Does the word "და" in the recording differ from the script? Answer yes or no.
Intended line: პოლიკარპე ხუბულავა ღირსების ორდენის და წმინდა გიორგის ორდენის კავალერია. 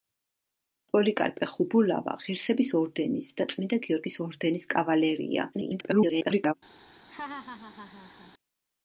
no